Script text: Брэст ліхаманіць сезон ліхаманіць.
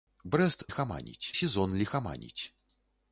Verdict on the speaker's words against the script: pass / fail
pass